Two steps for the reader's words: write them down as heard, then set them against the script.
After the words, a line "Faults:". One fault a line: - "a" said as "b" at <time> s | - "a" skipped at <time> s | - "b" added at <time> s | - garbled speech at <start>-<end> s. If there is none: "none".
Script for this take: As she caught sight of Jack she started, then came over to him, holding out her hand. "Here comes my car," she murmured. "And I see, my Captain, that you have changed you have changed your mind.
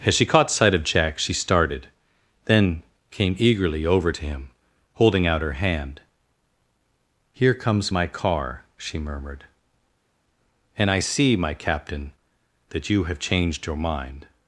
As she caught sight of Jack she started, then came eagerly over to him, holding out her hand. "Here comes my car," she murmured. "And I see, my Captain, that you have changed your mind.
Faults:
- "eagerly" added at 3.4 s
- "you have changed" skipped at 13.7 s